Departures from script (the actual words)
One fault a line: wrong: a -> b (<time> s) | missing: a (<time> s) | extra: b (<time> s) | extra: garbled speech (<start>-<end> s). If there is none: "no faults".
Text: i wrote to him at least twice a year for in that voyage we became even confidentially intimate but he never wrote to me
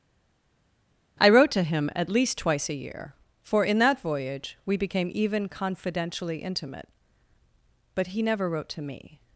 no faults